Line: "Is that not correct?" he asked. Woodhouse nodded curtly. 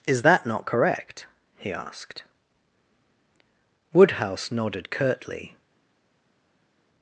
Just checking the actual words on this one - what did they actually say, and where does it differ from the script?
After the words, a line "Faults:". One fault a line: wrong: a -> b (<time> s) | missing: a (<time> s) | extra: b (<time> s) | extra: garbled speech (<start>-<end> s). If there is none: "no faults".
"Is that not correct?" he asked. Woodhouse nodded curtly.
Faults:
no faults